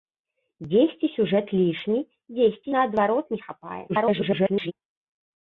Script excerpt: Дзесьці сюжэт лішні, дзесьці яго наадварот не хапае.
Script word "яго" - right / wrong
wrong